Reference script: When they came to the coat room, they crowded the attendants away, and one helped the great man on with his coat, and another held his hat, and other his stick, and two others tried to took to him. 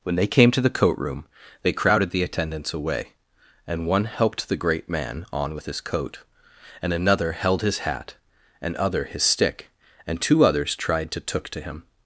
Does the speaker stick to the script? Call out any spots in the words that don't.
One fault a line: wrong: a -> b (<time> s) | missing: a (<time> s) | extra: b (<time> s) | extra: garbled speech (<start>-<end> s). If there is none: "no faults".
no faults